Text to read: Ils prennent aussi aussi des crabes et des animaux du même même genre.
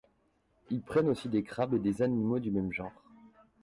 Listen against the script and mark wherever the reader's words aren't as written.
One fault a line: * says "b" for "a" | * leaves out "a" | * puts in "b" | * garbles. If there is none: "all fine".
* leaves out "aussi"
* leaves out "même"